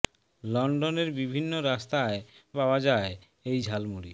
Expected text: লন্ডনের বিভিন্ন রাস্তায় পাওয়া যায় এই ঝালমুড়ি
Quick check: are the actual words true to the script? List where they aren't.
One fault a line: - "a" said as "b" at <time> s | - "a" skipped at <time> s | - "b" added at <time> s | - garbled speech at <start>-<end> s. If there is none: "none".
none